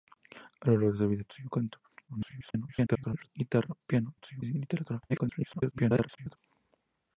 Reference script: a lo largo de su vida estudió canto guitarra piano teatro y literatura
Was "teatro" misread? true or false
true